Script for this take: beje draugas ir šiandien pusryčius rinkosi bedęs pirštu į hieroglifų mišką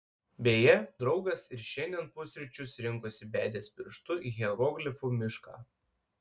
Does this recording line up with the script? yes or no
yes